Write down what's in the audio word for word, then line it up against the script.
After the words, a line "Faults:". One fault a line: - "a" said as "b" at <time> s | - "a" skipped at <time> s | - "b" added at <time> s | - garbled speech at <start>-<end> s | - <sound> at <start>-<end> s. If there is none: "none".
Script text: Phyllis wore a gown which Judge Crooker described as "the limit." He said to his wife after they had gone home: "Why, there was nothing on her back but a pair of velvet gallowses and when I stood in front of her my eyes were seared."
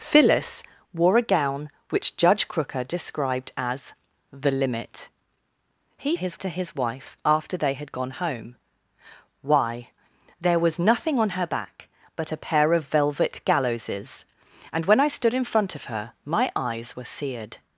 Phyllis wore a gown which Judge Crooker described as "the limit." He his to his wife after they had gone home: "Why, there was nothing on her back but a pair of velvet gallowses and when I stood in front of her my eyes were seared."
Faults:
- "said" said as "his" at 6.1 s